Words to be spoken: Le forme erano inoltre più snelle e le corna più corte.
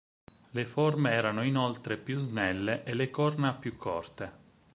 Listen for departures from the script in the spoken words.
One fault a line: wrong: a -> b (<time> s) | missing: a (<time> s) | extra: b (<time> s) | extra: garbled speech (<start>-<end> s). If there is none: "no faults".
no faults